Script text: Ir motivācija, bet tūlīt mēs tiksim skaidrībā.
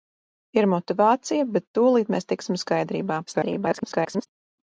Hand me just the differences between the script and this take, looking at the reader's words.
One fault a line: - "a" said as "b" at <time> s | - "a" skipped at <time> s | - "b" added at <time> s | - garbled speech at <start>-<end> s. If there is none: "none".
- garbled speech at 3.3-4.3 s